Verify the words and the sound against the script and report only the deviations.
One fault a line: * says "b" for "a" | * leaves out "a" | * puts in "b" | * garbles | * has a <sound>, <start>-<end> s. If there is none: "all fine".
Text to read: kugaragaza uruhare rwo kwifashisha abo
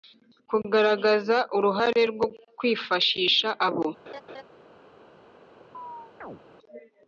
* has a laugh, 4.1-4.4 s
* has a chirp, 5.7-6.4 s